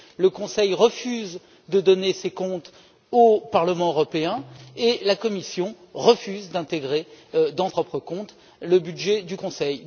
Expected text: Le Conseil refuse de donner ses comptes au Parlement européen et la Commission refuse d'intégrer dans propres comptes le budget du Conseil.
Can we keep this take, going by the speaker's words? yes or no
yes